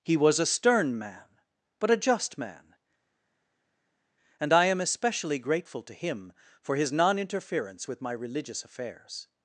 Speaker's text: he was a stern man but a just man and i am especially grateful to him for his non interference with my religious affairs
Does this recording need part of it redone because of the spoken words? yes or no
no